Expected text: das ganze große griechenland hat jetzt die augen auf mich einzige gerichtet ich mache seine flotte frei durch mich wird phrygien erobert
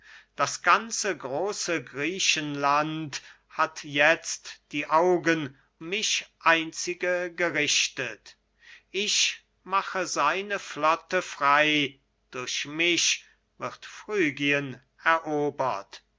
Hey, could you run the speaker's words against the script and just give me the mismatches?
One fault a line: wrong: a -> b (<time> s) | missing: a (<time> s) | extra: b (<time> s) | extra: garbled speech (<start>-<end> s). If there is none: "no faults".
missing: auf (5.5 s)